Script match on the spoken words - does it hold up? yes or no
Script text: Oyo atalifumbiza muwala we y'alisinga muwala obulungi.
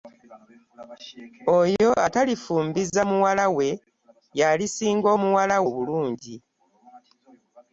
yes